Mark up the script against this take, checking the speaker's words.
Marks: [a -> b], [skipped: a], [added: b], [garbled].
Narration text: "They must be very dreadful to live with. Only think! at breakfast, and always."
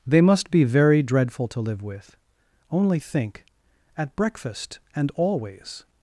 "They must be very dreadful to live with. Only think! at breakfast, and always."